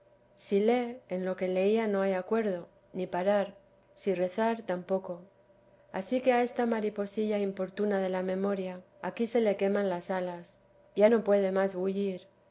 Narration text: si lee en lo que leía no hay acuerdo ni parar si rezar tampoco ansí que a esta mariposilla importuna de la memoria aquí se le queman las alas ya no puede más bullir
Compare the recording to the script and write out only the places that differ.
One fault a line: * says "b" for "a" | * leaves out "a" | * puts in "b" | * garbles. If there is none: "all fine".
all fine